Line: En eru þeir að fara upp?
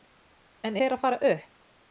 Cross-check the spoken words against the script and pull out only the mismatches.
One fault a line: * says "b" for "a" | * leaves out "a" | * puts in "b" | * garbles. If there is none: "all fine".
* leaves out "eru"